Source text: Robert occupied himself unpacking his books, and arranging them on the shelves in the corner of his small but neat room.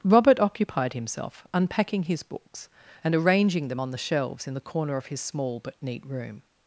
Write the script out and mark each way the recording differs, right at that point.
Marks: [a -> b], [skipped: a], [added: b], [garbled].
Robert occupied himself unpacking his books, and arranging them on the shelves in the corner of his small but neat room.